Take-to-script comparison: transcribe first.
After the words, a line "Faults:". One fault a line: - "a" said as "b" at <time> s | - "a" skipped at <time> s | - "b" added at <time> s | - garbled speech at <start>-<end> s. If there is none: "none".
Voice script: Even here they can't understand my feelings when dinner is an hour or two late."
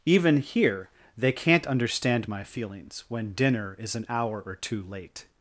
Even here they can't understand my feelings when dinner is an hour or two late."
Faults:
none